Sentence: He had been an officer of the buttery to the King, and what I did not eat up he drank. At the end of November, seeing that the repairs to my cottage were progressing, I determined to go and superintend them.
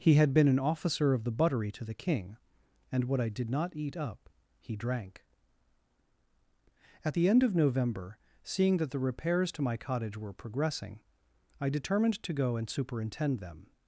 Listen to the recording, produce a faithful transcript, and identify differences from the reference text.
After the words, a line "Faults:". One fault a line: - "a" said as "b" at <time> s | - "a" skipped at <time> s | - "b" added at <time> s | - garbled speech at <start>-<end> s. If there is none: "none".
He had been an officer of the buttery to the King, and what I did not eat up he drank. At the end of November, seeing that the repairs to my cottage were progressing, I determined to go and superintend them.
Faults:
none